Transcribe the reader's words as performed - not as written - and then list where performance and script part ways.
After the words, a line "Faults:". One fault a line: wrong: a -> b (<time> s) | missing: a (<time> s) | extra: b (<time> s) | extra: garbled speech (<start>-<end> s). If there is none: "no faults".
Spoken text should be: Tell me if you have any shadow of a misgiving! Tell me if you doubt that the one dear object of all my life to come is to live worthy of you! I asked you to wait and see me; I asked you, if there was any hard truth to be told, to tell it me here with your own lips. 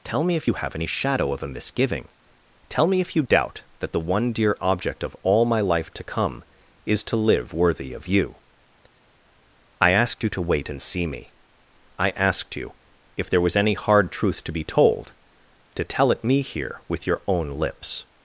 Tell me if you have any shadow of a misgiving! Tell me if you doubt that the one dear object of all my life to come is to live worthy of you! I asked you to wait and see me; I asked you, if there was any hard truth to be told, to tell it me here with your own lips.
Faults:
no faults